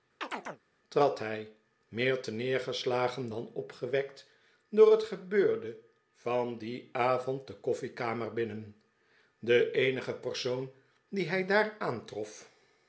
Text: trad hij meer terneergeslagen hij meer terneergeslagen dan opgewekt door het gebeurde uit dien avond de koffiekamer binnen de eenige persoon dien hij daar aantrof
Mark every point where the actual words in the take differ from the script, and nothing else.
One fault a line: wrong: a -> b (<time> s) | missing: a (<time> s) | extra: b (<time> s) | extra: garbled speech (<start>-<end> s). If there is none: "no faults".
missing: hij meer terneergeslagen (3.3 s)
wrong: uit -> van (6.1 s)